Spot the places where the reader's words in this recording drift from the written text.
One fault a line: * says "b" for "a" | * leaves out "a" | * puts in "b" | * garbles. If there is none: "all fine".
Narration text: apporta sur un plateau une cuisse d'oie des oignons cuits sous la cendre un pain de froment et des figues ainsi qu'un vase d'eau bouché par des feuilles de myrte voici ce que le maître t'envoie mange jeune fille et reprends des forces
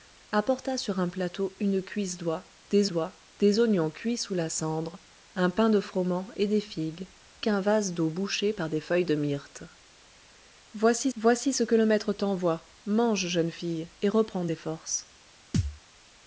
* puts in "d'oie des"
* leaves out "ainsi"
* puts in "voici"